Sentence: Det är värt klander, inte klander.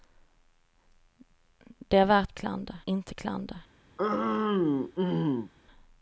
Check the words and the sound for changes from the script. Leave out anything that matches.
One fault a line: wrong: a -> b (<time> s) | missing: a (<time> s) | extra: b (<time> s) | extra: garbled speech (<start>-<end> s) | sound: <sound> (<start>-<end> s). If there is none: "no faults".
sound: throat clearing (4.0-5.5 s)